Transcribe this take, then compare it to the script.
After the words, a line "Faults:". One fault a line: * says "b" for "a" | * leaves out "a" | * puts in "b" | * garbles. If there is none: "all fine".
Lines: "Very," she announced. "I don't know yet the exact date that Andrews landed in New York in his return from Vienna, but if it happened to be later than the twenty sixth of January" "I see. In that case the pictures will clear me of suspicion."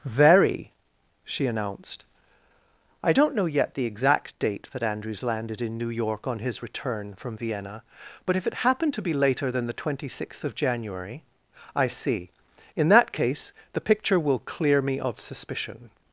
"Very," she announced. "I don't know yet the exact date that Andrews landed in New York on his return from Vienna, but if it happened to be later than the twenty sixth of January" "I see. In that case the picture will clear me of suspicion."
Faults:
* says "on" for "in"
* says "picture" for "pictures"